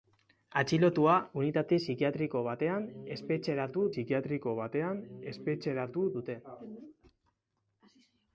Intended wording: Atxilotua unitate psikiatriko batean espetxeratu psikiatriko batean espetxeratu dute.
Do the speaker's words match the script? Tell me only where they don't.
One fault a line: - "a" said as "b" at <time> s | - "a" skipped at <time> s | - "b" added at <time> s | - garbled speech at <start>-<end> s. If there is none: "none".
none